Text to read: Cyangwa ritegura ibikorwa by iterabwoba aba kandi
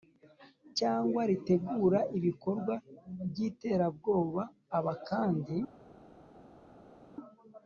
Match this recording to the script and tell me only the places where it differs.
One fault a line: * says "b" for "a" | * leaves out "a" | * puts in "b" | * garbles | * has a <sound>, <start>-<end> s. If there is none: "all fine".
all fine